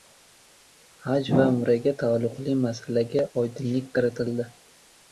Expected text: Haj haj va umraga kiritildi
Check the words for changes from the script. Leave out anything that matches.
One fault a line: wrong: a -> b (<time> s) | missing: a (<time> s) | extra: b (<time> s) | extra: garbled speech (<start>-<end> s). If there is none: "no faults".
missing: haj (1.3 s)
extra: taalluqli masalaga oydinlik (2.0 s)